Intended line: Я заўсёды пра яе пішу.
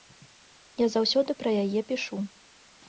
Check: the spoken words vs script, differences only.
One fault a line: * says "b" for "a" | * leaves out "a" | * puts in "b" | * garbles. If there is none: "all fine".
all fine